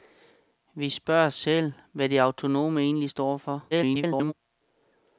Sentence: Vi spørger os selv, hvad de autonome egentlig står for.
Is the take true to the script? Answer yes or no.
no